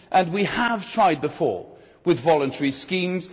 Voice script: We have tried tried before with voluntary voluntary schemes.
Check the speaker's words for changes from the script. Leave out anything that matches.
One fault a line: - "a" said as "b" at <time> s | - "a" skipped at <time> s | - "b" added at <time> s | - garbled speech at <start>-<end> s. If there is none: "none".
- "tried" skipped at 1.2 s
- "voluntary" skipped at 2.7 s